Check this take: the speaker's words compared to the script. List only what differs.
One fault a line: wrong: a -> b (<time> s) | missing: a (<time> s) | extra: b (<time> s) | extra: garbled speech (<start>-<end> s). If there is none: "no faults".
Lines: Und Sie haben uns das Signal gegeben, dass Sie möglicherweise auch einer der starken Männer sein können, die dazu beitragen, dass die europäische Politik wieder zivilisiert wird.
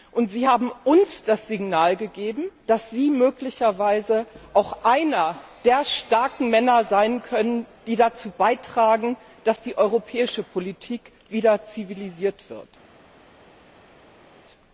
no faults